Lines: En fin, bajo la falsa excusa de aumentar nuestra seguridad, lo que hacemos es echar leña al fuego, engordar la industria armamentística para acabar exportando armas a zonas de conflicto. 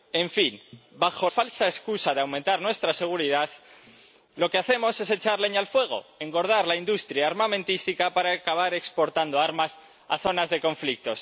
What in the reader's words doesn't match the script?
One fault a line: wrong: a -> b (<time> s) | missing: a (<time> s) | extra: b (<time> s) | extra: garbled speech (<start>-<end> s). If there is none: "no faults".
missing: la (1.3 s)